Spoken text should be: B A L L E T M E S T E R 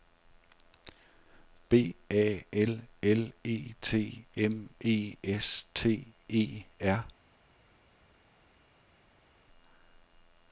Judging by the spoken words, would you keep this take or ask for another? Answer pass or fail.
pass